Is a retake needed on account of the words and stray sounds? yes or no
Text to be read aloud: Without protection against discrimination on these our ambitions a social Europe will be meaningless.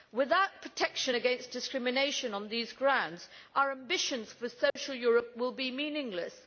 yes